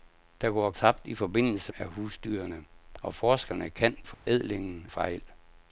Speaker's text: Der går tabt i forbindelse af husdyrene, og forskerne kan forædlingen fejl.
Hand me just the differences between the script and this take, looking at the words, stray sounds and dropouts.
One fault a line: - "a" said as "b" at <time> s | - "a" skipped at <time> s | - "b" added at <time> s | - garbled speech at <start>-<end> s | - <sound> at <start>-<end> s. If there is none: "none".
- dropout at 4.1-4.3 s